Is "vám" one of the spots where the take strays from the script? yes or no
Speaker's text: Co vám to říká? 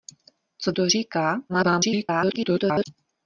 yes